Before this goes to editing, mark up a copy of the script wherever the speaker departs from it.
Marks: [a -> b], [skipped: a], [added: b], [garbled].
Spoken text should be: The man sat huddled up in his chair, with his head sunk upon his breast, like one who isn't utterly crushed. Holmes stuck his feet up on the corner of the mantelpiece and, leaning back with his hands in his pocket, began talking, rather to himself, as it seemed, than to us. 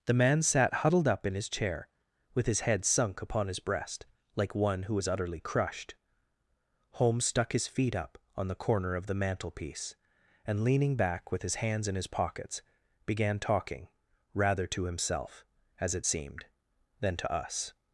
The man sat huddled up in his chair, with his head sunk upon his breast, like one who [isn't -> is] utterly crushed. Holmes stuck his feet up on the corner of the mantelpiece and, leaning back with his hands in his [pocket, -> pockets] began talking, rather to himself, as it seemed, than to us.